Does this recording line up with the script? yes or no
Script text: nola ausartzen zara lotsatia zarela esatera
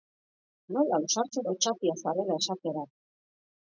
no